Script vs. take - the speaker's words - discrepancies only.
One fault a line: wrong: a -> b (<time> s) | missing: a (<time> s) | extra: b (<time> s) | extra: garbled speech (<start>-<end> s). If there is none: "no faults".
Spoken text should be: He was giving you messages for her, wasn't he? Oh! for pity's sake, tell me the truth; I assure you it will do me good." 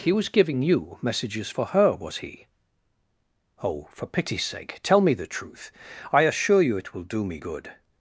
wrong: wasn't -> was (1.9 s)